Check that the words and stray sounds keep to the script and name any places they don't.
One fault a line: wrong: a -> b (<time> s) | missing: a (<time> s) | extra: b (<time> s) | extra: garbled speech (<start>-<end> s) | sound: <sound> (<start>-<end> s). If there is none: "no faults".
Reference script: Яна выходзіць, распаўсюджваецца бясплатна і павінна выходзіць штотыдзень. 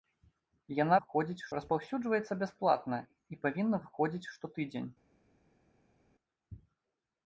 no faults